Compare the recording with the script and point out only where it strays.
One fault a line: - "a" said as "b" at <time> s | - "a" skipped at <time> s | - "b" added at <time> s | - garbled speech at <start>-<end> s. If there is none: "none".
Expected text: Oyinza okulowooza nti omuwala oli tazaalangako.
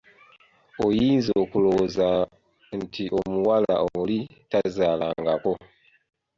none